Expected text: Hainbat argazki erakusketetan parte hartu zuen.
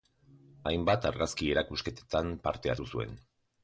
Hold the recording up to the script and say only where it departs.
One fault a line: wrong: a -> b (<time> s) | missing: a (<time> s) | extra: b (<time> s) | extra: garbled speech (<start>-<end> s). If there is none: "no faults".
no faults